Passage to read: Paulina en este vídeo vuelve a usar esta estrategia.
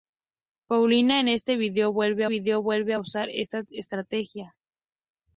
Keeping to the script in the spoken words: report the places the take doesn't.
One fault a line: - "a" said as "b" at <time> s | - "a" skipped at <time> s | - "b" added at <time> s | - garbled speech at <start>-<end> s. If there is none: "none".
- "vídeo vuelve" added at 2.3 s